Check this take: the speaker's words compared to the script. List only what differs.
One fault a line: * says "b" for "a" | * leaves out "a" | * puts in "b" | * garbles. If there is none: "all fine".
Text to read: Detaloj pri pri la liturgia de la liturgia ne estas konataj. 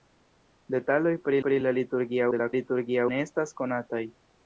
all fine